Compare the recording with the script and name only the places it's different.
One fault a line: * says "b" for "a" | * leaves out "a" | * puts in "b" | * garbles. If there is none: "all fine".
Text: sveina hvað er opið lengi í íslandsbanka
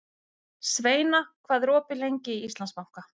all fine